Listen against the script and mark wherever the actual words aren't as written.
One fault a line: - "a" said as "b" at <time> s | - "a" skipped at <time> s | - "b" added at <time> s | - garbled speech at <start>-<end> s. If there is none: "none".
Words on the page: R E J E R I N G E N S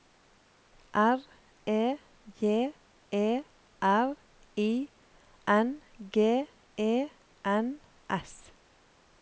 none